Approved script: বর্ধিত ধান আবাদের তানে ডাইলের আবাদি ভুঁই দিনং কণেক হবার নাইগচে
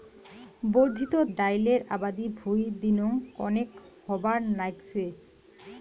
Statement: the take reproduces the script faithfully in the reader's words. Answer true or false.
false